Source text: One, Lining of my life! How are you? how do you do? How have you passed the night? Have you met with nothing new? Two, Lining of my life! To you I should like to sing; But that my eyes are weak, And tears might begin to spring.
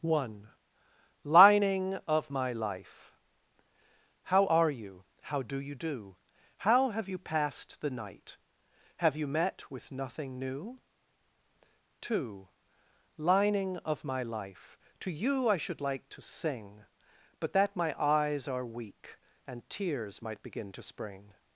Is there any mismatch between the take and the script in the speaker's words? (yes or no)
no